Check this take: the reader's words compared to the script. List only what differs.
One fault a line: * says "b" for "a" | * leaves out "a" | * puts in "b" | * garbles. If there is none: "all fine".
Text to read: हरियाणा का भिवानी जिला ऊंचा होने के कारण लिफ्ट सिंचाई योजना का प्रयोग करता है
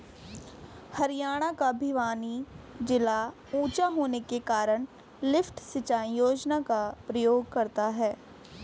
all fine